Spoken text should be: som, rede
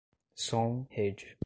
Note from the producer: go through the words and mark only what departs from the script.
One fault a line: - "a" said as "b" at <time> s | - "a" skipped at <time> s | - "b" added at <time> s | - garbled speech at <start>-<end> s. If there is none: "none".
none